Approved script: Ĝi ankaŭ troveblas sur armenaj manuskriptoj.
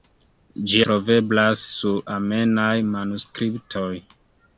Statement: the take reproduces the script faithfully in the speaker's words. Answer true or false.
false